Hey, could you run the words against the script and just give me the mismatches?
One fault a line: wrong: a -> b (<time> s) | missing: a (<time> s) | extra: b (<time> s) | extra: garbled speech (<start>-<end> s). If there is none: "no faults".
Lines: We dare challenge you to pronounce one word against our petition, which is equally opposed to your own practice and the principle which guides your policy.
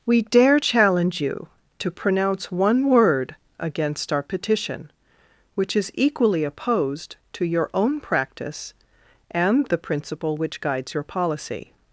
no faults